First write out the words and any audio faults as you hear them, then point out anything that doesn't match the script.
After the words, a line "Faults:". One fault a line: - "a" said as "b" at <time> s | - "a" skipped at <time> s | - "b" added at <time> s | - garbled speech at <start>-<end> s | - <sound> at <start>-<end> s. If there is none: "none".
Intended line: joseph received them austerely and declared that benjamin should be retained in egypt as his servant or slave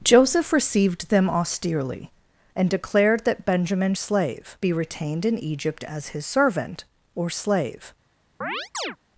joseph received them austerely and declared that benjamin slave be retained in egypt as his servant or slave
Faults:
- "should" said as "slave" at 3.9 s
- chirp at 8.4-9.0 s